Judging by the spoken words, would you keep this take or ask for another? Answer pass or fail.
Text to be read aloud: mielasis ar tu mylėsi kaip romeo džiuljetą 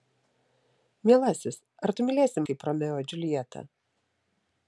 pass